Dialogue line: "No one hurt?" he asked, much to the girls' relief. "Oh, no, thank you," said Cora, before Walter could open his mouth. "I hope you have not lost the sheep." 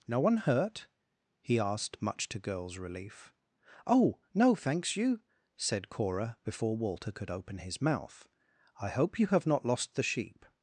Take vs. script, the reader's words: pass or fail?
fail